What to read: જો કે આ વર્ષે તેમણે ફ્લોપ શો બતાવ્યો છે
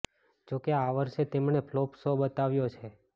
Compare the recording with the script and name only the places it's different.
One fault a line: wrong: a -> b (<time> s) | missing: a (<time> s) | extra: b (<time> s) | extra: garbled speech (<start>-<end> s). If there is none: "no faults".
no faults